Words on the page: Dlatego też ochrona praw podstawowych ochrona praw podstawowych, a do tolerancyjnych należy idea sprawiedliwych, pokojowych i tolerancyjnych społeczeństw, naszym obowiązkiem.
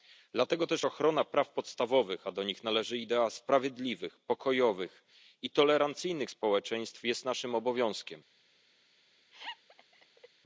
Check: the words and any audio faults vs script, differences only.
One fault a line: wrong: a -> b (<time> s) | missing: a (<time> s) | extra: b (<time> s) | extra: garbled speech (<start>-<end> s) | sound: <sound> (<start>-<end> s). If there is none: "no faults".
missing: ochrona praw podstawowych (2.3 s)
wrong: tolerancyjnych -> nich (2.4 s)
extra: jest (7.0 s)
sound: laugh (9.3-10.3 s)